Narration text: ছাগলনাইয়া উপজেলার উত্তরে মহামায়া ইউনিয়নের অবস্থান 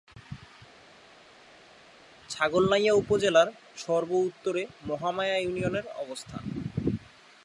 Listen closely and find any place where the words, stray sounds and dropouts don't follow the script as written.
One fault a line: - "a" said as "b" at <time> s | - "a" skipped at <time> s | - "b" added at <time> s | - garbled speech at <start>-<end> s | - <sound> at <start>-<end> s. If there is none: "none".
- "সর্ব" added at 3.8 s